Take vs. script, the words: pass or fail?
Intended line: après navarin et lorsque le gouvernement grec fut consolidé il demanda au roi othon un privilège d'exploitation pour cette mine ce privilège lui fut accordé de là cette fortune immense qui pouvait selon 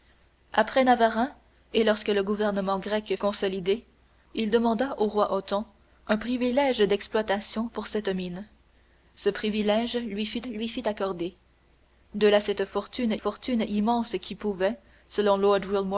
fail